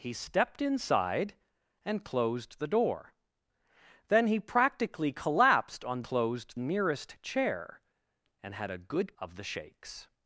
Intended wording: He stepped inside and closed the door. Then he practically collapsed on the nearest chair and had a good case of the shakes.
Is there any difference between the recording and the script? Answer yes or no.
yes